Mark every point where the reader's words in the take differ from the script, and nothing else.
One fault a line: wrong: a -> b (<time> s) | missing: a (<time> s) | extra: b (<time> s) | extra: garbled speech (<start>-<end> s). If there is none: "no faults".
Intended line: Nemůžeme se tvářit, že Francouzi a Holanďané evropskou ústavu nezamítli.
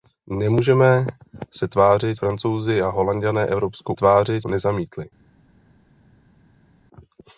missing: že (2.2 s)
wrong: ústavu -> tvářit (3.9 s)